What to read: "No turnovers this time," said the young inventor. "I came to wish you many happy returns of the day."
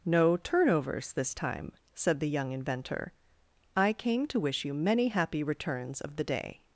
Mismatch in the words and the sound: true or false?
false